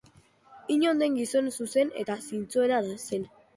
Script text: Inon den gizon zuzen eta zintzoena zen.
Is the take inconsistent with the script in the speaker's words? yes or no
no